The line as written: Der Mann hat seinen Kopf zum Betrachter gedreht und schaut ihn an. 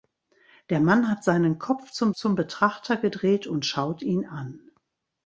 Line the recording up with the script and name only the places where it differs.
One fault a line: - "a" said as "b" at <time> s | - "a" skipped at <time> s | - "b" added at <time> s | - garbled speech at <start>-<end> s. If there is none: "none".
- "zum" added at 2.1 s